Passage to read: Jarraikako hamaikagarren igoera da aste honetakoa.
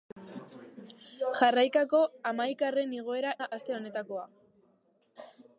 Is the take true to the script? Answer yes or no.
yes